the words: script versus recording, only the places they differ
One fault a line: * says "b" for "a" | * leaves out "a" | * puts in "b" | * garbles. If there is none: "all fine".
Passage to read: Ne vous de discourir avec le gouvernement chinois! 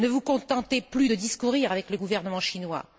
* puts in "contentez plus"